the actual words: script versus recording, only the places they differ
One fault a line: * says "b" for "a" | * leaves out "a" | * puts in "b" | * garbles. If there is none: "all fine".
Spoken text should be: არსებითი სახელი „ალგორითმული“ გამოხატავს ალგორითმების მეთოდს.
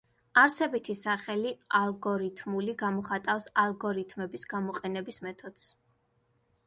* puts in "გამოყენების"